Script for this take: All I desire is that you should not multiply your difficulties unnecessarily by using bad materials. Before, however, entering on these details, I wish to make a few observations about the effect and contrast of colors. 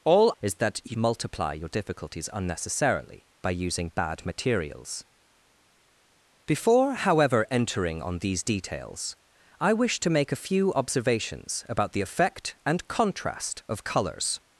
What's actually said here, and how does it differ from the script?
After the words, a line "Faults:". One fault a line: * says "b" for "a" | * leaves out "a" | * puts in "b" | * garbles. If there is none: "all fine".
All is that you multiply your difficulties unnecessarily by using bad materials. Before, however, entering on these details, I wish to make a few observations about the effect and contrast of colors.
Faults:
* leaves out "I desire"
* leaves out "should not"